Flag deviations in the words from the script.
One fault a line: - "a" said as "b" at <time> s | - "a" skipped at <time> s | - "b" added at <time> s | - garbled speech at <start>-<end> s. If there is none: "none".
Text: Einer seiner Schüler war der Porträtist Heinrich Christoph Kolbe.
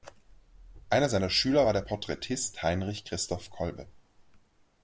none